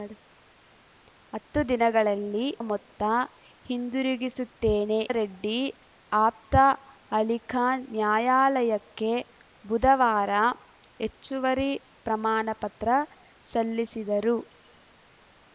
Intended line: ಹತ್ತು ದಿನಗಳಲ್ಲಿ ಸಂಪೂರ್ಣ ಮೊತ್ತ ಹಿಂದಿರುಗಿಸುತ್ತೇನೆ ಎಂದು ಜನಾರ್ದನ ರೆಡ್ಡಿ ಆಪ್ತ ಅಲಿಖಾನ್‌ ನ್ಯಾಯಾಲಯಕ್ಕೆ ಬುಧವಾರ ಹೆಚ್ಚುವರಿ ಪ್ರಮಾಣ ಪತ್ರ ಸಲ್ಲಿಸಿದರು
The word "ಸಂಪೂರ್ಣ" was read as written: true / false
false